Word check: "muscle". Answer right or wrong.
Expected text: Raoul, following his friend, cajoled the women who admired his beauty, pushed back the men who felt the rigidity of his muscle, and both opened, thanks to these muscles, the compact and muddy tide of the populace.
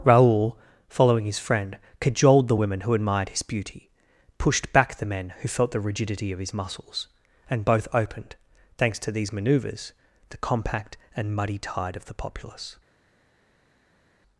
wrong